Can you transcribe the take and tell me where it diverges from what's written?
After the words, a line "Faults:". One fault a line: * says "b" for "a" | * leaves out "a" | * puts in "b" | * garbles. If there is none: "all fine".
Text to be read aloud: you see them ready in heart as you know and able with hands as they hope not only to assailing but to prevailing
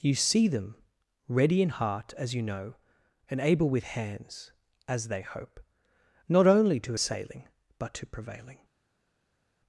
you see them ready in heart as you know and able with hands as they hope not only to assailing but to prevailing
Faults:
all fine